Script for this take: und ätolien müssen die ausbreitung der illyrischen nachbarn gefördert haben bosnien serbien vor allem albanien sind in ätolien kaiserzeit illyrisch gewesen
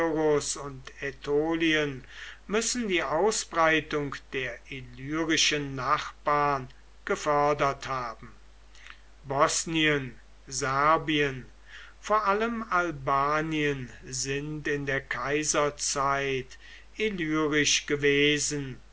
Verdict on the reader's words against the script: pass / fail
fail